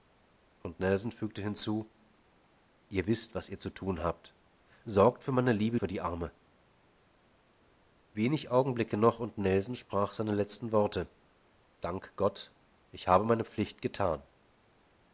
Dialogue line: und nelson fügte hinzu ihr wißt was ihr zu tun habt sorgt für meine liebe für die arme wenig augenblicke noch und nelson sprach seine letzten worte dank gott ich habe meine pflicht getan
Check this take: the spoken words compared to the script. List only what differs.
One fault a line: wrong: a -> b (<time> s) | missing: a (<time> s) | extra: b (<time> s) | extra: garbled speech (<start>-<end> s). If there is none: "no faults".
no faults